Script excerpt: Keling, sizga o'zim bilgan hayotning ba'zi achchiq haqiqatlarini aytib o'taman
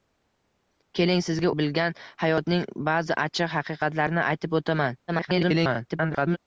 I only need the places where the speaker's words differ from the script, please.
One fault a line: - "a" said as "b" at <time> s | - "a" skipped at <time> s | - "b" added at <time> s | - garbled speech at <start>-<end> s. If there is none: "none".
- "o'zim" skipped at 1.5 s
- garbled speech at 5.1-6.4 s